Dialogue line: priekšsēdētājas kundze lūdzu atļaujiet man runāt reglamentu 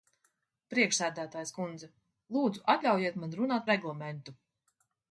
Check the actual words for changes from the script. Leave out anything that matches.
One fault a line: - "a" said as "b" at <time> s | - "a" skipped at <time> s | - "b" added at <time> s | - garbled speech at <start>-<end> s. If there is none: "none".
none